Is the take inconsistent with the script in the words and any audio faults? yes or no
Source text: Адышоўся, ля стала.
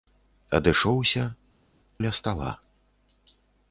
no